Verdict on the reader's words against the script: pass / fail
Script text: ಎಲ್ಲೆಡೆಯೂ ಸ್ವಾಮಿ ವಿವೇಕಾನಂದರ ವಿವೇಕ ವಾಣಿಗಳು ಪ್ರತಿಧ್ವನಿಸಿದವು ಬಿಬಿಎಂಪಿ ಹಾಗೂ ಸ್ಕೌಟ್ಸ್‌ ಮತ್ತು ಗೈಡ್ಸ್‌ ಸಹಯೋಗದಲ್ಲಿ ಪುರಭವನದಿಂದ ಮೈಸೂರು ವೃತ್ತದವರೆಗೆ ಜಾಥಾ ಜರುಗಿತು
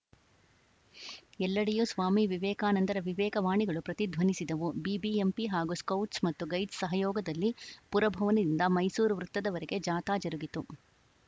pass